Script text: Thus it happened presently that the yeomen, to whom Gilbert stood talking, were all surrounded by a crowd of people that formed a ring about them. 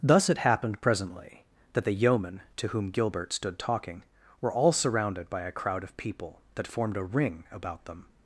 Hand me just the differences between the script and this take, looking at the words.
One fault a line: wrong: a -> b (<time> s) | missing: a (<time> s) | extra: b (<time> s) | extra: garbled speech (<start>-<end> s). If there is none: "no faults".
no faults